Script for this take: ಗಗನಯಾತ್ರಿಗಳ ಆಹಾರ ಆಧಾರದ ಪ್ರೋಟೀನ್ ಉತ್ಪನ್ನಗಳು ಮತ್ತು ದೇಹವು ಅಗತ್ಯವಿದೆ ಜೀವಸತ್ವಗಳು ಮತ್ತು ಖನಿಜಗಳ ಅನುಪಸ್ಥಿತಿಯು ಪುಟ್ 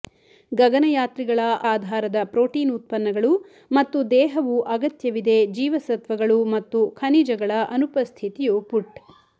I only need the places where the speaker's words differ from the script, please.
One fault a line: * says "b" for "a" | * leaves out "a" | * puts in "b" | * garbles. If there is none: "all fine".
* leaves out "ಆಹಾರ"